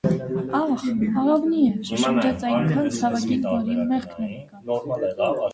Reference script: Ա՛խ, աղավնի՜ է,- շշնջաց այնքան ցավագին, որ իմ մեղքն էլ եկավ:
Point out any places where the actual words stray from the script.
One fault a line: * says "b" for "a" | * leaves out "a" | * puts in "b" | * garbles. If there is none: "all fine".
all fine